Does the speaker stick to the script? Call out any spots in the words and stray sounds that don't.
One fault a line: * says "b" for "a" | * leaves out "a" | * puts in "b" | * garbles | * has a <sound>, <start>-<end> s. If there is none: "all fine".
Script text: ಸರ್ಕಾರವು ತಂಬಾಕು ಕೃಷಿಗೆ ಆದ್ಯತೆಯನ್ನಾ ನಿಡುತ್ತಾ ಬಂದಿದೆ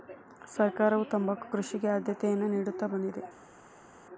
all fine